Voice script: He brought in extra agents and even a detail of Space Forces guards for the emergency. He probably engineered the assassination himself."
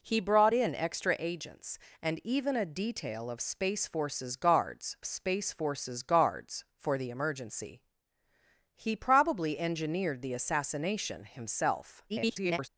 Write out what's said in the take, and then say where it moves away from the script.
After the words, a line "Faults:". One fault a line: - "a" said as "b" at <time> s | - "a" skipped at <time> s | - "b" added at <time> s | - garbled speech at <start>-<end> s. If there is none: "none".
He brought in extra agents and even a detail of Space Forces guards Space Forces guards for the emergency. He probably engineered the assassination himself." [garbled]
Faults:
- "Space Forces guards" added at 5.0 s
- garbled speech at 12.1-12.7 s